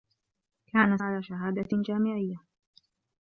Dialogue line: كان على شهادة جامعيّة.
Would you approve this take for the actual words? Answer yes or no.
yes